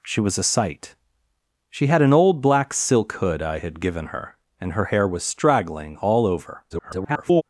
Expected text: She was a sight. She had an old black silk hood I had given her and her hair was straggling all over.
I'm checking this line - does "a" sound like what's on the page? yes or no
yes